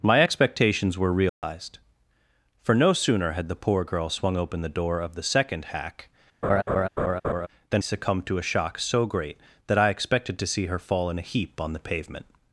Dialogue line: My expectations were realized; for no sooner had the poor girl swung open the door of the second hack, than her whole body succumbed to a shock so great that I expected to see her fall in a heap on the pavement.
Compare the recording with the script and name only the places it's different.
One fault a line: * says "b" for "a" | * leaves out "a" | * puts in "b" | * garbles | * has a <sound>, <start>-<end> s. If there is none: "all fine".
* has a dropout, 1.3-1.4 s
* has a laugh, 6.4-7.5 s
* leaves out "her whole body"